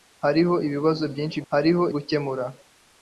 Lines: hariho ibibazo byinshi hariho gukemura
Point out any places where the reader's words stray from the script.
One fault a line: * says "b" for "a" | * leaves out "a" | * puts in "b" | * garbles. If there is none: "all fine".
all fine